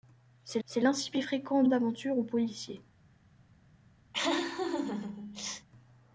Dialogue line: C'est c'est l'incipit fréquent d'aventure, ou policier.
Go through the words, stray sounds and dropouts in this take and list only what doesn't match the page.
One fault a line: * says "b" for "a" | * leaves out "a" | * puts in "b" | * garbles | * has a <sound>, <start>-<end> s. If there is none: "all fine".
* has a laugh, 4.1-5.7 s